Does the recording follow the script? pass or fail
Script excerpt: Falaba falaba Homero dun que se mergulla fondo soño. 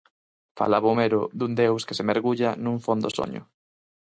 fail